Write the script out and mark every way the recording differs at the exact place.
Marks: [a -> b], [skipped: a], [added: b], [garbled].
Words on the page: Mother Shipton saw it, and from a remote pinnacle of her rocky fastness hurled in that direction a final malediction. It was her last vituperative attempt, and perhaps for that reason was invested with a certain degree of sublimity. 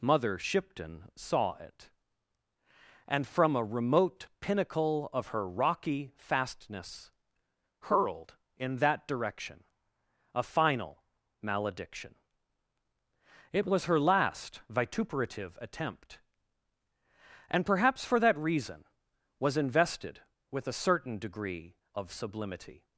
Mother Shipton saw it, and from a remote pinnacle of her rocky fastness hurled in that direction a final malediction. It was her last vituperative attempt, and perhaps for that reason was invested with a certain degree of sublimity.